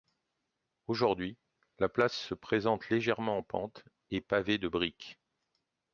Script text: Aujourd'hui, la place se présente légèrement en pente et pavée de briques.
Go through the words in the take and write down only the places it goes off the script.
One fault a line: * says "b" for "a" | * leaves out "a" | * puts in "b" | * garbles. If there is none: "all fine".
all fine